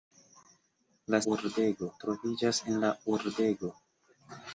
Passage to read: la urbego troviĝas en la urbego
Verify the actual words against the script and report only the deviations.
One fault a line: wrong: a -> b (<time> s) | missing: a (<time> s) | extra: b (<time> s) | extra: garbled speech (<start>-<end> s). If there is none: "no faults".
no faults